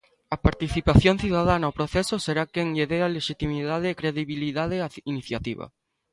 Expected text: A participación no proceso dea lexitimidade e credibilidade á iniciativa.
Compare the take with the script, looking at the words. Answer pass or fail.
fail